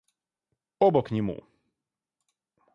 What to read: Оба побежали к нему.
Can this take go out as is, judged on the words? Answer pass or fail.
fail